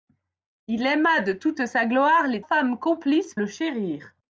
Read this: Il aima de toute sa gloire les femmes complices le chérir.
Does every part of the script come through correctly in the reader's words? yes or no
yes